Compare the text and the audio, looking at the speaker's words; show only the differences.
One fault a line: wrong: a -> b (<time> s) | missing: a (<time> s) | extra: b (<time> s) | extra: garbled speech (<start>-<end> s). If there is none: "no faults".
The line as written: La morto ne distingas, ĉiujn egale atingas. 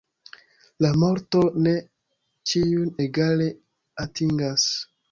missing: distingas (1.7 s)